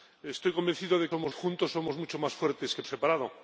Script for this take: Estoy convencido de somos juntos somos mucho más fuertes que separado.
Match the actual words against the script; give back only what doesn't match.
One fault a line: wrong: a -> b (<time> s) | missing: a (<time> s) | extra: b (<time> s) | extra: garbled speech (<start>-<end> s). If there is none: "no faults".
no faults